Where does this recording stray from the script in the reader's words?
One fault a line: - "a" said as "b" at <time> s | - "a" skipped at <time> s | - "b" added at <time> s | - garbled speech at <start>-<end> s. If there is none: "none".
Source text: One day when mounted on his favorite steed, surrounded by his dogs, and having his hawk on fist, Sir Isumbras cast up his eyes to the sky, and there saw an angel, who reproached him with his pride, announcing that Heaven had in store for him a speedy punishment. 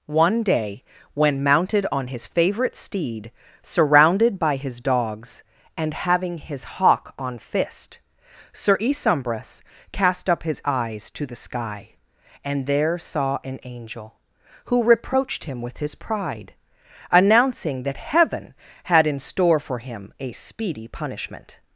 none